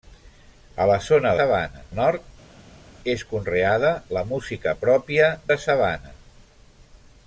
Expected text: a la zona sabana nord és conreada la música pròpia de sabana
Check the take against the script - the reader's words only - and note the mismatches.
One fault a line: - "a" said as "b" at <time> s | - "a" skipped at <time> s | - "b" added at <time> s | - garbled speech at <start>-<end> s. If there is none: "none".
none